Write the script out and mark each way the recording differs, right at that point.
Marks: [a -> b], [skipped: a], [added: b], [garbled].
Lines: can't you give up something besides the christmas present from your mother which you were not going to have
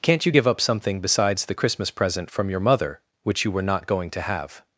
can't you give up something besides the christmas present from your mother which you were not going to have